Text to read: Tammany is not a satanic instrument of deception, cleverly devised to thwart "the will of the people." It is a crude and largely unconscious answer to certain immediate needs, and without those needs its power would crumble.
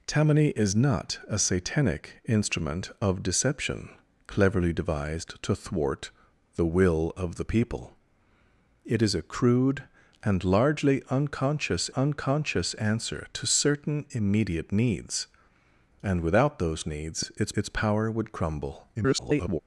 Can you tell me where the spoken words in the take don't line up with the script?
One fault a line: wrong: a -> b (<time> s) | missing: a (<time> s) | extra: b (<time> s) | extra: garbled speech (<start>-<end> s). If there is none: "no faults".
extra: unconscious (11.9 s)
extra: its (17.5 s)
extra: garbled speech (18.9-19.6 s)